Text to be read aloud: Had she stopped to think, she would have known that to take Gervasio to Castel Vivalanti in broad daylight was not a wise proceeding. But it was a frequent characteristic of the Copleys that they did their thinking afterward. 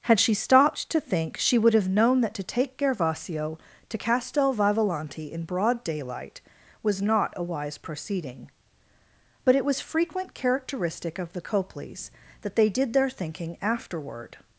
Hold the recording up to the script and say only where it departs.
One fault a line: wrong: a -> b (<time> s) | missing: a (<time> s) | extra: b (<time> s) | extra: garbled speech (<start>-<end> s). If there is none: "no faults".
missing: a (9.8 s)